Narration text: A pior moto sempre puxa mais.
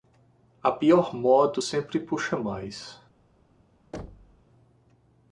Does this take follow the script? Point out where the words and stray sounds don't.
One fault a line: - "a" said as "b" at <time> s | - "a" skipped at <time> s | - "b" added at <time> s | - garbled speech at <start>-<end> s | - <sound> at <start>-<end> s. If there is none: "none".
- thud at 3.9-4.4 s